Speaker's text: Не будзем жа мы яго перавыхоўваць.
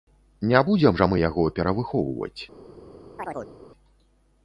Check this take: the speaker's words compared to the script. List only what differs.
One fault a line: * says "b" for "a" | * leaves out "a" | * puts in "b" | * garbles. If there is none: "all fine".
all fine